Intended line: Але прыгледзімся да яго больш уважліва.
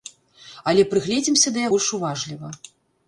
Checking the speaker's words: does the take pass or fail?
fail